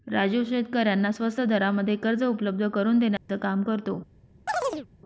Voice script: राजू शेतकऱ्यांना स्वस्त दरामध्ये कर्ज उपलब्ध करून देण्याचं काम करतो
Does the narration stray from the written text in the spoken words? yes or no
no